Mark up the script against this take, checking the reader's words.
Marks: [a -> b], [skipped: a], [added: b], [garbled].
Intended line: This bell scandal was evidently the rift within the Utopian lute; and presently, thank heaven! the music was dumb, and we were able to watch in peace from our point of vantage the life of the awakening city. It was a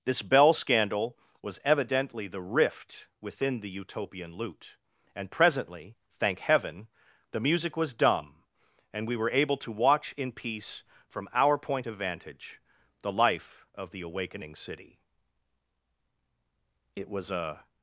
This bell scandal was evidently the rift within the Utopian lute; and presently, thank heaven! the music was dumb, and we were able to watch in peace from our point of vantage the life of the awakening city. It was a